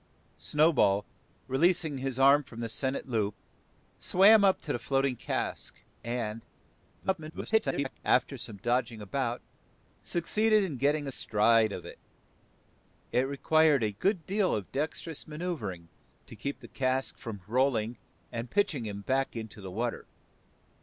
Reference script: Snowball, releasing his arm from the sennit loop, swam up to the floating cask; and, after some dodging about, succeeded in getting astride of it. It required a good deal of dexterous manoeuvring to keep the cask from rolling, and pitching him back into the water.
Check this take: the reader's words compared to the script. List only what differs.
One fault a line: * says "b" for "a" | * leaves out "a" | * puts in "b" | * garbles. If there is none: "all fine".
* garbles